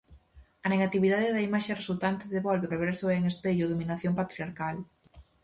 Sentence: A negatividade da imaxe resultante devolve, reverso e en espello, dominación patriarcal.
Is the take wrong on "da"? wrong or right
right